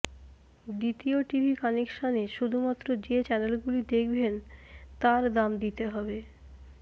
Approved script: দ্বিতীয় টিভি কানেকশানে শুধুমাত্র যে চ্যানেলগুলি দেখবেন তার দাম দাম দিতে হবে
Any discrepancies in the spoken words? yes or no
yes